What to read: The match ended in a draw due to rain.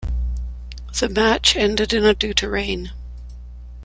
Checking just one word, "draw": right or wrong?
wrong